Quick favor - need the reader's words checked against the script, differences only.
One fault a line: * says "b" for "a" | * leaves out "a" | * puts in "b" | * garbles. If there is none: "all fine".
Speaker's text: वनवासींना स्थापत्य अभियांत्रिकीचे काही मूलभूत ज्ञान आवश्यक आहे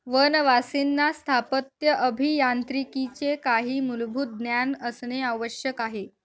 * puts in "असणे"